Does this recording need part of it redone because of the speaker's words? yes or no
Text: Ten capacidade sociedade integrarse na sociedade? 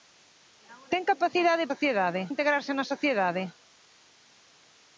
no